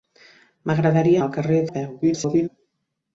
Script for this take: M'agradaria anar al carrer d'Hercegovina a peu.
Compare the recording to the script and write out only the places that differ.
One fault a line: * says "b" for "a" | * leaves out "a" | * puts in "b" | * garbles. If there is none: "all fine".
* leaves out "anar"
* leaves out "d'Hercegovina"
* garbles